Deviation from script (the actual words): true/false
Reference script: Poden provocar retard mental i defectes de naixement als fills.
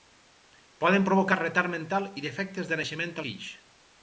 true